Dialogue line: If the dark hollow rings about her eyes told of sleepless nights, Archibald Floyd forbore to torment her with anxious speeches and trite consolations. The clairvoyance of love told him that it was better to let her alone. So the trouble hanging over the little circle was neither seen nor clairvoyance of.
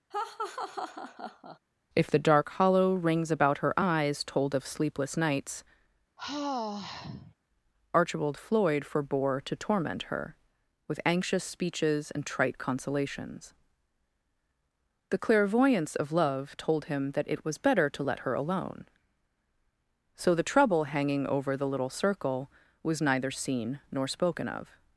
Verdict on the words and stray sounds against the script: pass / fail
fail